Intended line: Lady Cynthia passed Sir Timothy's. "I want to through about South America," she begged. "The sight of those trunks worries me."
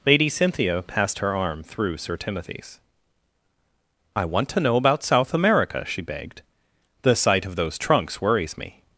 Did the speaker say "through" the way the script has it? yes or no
no